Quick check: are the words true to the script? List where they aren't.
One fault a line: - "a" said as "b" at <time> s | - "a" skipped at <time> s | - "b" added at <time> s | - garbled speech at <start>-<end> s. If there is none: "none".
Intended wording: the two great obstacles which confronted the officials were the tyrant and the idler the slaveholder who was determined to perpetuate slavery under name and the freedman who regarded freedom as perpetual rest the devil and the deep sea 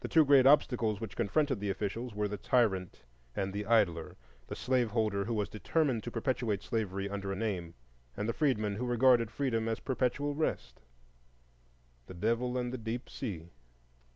none